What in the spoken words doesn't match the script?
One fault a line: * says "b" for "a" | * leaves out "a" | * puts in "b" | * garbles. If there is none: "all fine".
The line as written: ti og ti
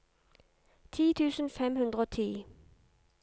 * puts in "tusen fem hundre"